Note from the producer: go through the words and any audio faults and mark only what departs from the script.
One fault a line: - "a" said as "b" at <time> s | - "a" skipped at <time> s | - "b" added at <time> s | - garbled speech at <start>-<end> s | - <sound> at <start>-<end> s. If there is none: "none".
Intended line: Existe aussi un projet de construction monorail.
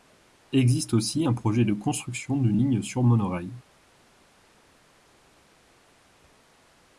- "d'une ligne sur" added at 2.4 s